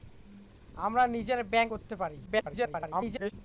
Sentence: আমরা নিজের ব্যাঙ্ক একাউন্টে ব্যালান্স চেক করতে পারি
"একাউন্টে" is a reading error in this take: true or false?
true